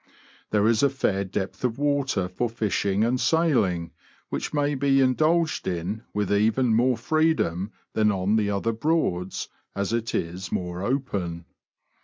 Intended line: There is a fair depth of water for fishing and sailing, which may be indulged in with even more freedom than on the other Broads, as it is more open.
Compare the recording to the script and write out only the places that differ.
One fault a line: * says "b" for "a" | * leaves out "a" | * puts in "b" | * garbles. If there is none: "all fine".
all fine